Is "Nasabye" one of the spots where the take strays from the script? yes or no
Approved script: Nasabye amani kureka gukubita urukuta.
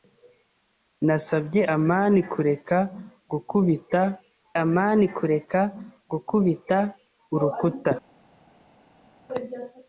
no